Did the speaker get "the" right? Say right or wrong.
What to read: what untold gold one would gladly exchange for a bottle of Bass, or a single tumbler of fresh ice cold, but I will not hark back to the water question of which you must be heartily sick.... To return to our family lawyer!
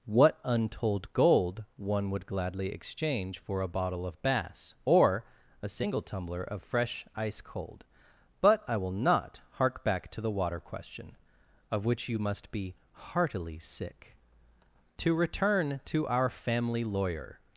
right